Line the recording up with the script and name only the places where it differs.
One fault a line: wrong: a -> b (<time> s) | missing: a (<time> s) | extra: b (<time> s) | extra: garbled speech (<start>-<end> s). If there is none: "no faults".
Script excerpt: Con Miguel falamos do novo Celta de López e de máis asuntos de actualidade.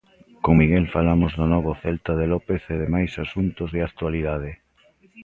no faults